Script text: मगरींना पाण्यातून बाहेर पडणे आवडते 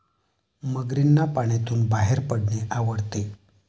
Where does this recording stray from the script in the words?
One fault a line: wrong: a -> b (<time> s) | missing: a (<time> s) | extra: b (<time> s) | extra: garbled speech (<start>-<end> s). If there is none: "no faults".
no faults